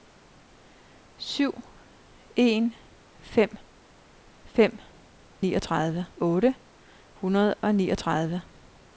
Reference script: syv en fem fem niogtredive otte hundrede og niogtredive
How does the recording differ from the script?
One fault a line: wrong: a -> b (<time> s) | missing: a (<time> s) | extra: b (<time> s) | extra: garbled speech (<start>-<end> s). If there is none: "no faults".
no faults